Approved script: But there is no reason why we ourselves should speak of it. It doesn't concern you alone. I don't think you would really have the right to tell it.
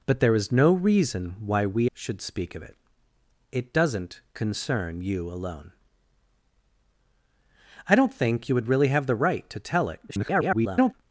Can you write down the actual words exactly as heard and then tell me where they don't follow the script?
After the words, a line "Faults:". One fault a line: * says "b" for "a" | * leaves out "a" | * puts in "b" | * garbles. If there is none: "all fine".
But there is no reason why we should speak of it. It doesn't concern you alone. I don't think you would really have the right to tell it. [garbled]
Faults:
* leaves out "ourselves"
* garbles